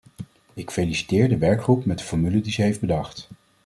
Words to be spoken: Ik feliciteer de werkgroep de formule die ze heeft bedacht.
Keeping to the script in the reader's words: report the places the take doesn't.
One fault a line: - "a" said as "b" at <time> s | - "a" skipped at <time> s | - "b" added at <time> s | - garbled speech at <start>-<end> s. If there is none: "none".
- "met" added at 1.9 s